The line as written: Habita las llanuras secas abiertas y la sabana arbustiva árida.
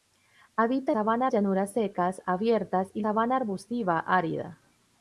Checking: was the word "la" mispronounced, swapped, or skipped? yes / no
yes